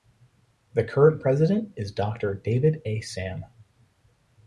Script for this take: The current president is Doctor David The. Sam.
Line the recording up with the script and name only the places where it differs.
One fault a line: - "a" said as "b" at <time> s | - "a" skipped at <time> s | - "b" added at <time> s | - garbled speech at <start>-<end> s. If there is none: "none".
- "The" said as "A" at 2.8 s